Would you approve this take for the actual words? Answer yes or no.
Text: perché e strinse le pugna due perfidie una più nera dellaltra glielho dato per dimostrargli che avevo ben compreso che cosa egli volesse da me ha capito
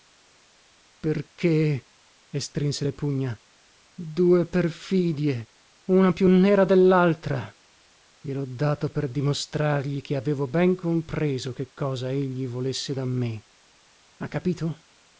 yes